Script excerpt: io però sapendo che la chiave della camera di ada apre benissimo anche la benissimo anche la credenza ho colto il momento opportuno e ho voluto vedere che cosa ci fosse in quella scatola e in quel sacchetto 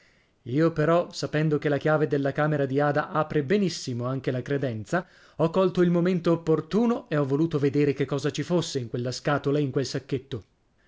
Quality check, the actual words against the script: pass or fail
fail